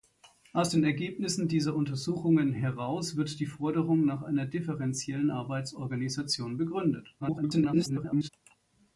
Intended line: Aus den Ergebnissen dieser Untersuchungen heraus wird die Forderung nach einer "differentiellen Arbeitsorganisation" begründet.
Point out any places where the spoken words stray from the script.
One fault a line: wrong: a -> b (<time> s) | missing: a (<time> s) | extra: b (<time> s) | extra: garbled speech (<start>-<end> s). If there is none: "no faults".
extra: garbled speech (7.2-8.3 s)